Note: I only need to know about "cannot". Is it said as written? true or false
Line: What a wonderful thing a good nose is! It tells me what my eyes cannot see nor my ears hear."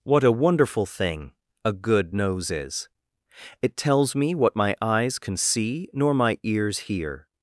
false